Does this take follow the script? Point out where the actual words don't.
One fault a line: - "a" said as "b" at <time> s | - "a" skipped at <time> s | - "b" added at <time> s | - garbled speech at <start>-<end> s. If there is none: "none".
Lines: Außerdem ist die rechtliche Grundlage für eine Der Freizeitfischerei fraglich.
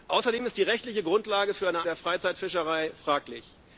none